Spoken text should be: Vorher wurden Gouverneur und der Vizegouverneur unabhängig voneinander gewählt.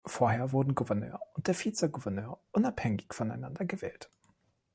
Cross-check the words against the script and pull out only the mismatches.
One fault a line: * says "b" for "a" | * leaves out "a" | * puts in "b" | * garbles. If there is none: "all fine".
all fine